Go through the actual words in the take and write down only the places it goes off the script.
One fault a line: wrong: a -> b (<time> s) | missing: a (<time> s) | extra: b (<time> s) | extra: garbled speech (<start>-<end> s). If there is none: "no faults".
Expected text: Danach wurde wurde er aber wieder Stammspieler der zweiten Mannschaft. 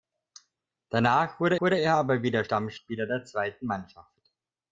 no faults